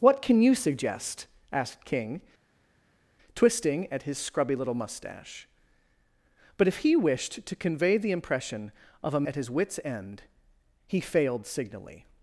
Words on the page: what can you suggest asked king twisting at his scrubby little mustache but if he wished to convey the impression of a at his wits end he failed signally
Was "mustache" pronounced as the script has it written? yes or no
yes